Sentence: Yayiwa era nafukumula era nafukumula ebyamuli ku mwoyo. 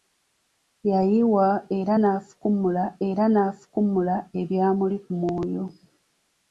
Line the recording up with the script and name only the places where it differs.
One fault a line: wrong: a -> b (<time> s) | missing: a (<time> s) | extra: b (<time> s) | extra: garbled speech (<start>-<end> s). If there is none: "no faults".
no faults